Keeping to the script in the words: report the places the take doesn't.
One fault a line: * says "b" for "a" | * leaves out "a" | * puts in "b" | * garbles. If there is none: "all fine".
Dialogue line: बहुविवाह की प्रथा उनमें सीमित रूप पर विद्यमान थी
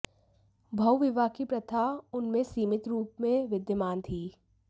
* says "में" for "पर"